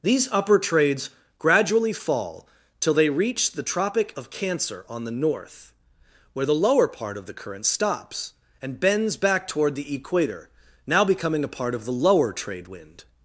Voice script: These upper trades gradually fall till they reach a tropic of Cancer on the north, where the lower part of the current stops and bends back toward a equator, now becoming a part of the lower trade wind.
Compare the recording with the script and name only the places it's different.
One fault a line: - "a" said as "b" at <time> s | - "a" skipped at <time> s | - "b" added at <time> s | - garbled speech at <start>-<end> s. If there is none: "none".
- "a" said as "the" at 3.5 s
- "a" said as "the" at 9.7 s